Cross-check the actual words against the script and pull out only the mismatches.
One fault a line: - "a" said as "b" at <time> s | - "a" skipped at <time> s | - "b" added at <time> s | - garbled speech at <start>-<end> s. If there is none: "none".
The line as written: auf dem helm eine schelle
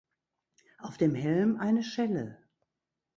none